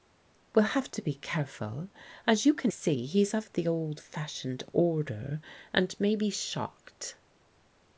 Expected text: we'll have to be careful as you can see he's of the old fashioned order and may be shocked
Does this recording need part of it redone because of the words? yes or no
no